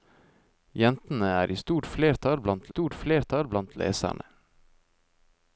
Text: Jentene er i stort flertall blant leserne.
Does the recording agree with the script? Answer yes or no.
no